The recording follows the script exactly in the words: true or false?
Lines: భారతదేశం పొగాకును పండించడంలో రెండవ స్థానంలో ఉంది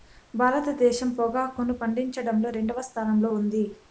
true